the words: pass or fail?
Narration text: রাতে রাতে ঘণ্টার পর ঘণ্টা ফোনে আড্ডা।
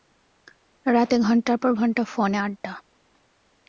fail